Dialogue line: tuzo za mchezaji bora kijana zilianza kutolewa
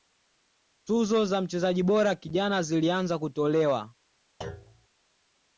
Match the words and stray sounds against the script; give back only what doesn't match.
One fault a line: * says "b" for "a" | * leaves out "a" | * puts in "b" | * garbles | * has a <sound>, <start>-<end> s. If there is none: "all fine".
* has a thud, 4.4-4.9 s